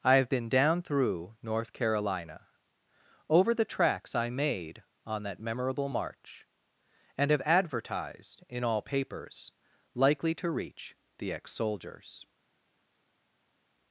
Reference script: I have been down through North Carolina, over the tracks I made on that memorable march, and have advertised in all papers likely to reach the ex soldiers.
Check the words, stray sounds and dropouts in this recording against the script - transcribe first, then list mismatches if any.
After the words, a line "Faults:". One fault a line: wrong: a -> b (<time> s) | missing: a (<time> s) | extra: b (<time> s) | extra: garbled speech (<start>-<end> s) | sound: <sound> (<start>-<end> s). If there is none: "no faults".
I have been down through North Carolina, over the tracks I made on that memorable march, and have advertised in all papers likely to reach the ex soldiers.
Faults:
no faults